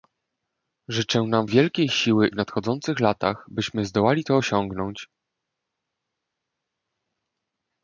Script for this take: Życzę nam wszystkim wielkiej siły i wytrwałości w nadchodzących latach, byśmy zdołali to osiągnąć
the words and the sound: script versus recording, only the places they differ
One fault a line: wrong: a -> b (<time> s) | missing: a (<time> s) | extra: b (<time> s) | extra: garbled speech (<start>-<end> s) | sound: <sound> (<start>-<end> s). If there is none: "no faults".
missing: wszystkim (1.5 s)
missing: i wytrwałości (2.3 s)